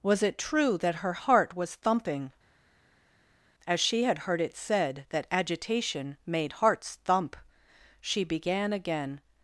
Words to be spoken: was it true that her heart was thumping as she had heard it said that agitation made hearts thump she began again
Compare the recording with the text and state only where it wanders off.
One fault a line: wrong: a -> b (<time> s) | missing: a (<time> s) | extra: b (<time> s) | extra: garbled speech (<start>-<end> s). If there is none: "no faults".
no faults